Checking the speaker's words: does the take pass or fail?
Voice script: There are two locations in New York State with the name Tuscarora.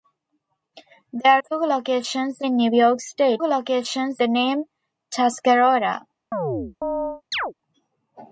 fail